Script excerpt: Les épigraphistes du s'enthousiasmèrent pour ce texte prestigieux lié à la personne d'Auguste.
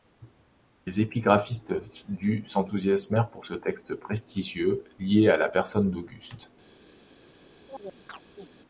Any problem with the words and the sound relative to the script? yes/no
yes